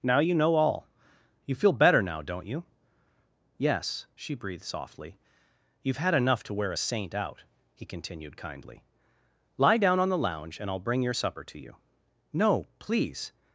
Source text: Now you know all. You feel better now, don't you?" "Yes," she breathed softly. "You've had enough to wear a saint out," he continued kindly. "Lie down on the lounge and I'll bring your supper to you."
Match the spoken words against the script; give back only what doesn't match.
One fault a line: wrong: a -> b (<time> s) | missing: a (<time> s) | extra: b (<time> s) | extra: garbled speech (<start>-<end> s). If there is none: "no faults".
extra: No please (12.3 s)